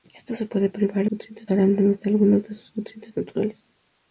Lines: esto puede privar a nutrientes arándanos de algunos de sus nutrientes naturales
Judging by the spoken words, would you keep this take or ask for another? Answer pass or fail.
pass